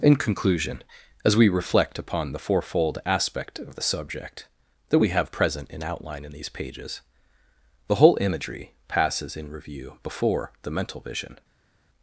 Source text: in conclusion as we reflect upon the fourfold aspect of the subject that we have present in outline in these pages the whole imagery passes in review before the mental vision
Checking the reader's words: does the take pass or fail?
pass